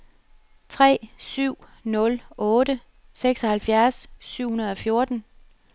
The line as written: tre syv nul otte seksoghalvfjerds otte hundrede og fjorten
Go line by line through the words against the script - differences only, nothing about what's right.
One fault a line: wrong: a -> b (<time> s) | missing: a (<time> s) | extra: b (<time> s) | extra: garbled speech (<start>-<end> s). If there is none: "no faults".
wrong: otte -> syv (4.2 s)